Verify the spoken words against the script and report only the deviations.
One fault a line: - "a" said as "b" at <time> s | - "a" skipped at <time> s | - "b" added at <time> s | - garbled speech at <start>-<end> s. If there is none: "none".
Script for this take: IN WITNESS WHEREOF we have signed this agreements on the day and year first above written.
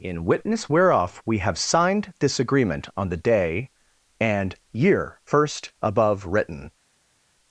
- "agreements" said as "agreement" at 2.4 s